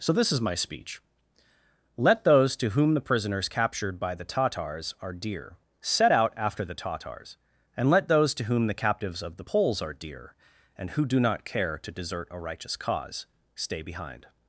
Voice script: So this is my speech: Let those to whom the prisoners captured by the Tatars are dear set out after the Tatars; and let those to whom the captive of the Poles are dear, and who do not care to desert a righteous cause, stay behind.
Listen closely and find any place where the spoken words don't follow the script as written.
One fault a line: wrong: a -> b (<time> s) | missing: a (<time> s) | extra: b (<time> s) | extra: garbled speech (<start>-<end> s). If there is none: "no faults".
wrong: captive -> captives (8.8 s)